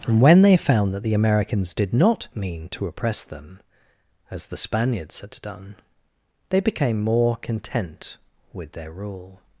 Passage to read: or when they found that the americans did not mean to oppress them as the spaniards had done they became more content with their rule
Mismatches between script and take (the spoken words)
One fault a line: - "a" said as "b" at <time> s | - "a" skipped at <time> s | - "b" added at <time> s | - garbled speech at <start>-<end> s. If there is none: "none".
- "or" said as "and" at 0.1 s